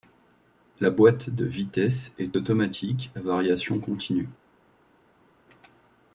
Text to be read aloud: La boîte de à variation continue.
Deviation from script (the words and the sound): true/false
true